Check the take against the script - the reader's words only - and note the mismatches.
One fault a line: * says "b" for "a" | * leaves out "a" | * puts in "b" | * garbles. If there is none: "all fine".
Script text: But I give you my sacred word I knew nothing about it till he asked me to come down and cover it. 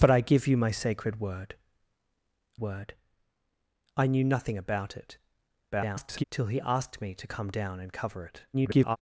* puts in "word"
* garbles
* garbles